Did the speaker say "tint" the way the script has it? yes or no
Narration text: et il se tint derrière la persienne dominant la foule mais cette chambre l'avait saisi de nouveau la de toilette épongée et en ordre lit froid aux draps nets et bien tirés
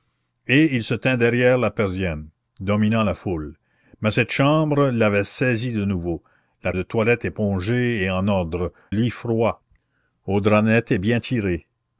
yes